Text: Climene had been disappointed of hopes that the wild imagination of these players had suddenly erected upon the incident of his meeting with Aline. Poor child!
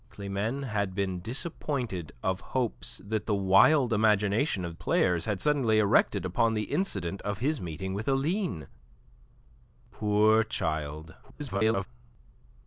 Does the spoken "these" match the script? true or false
false